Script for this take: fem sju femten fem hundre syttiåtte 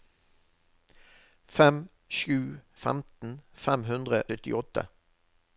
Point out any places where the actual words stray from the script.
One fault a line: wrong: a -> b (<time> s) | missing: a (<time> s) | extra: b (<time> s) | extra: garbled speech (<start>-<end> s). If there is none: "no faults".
no faults